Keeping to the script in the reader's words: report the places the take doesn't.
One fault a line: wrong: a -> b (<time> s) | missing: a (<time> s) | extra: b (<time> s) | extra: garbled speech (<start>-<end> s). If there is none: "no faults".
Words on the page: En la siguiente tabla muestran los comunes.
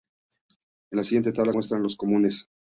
no faults